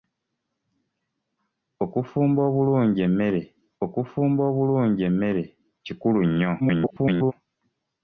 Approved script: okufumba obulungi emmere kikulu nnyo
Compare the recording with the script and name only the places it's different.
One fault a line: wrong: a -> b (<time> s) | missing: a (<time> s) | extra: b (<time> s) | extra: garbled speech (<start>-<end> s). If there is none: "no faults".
extra: okufumba obulungi emmere (3.8 s)
extra: garbled speech (6.6-7.3 s)